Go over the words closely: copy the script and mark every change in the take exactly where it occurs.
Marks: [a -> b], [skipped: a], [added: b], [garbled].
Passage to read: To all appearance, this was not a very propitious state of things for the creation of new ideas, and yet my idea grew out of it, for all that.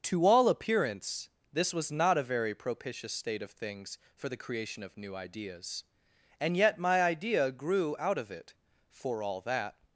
To all appearance, this was not a very propitious state of things for the creation of new ideas, and yet my idea grew out of it, for all that.